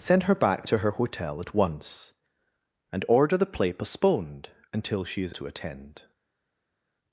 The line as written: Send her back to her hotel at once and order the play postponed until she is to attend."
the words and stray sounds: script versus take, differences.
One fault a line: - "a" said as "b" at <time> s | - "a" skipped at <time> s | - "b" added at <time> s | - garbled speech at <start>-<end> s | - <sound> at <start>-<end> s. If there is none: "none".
none